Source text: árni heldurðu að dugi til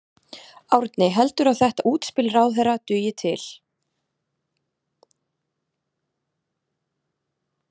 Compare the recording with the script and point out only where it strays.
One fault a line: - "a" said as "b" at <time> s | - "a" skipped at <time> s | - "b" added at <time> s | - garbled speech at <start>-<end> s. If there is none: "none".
- "þetta útspil ráðherra" added at 1.6 s